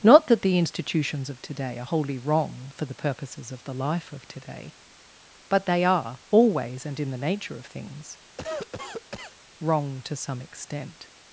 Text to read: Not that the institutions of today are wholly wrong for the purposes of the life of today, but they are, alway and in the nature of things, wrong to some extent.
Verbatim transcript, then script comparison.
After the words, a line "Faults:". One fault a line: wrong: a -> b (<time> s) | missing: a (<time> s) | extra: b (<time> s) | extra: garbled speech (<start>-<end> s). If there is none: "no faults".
Not that the institutions of today are wholly wrong for the purposes of the life of today, but they are, always and in the nature of things, wrong to some extent.
Faults:
wrong: alway -> always (6.3 s)